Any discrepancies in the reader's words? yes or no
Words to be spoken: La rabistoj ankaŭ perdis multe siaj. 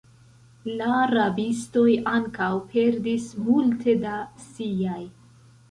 yes